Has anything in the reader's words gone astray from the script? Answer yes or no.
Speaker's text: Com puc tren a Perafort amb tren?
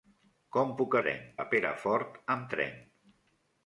no